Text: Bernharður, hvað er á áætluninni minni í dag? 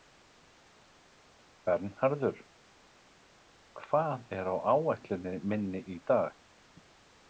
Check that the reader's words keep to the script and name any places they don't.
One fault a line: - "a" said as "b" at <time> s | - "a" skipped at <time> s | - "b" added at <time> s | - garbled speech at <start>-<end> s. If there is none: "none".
none